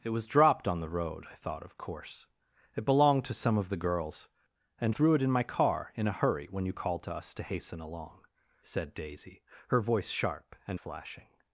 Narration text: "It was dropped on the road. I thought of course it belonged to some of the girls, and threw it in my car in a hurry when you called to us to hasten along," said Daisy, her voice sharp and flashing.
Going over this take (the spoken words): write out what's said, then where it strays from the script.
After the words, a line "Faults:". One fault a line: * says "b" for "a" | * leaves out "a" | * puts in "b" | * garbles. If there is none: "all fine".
"It was dropped on the road. I thought of course it belonged to some of the girls, and threw it in my car in a hurry when you called to us to hasten along," said Daisy, her voice sharp and flashing.
Faults:
all fine